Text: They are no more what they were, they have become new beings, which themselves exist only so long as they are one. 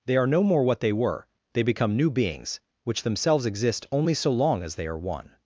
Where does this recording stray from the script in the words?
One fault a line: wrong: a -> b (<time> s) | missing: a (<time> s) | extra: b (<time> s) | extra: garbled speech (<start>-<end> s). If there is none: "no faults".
missing: have (1.6 s)